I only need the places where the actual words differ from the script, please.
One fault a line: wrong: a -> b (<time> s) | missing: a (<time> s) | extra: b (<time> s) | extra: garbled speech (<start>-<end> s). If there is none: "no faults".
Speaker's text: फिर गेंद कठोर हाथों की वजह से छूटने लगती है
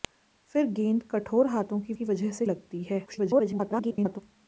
extra: की (1.9 s)
missing: छूटने (2.4 s)
extra: garbled speech (3.1-4.2 s)